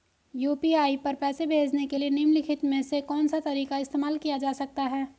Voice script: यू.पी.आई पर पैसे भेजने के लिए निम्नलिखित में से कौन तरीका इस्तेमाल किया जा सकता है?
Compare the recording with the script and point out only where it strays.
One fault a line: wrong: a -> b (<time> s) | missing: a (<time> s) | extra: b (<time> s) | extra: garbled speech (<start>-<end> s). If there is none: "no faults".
extra: सा (3.3 s)